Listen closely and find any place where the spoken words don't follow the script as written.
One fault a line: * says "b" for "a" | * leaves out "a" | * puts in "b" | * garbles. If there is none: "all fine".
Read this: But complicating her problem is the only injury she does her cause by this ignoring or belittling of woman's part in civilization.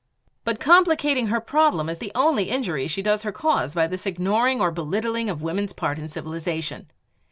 all fine